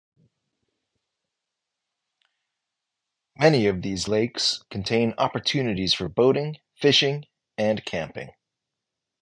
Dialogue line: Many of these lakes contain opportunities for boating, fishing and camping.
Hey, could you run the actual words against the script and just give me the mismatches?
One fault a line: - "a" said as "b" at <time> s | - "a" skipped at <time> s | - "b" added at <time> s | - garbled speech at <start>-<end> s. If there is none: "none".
none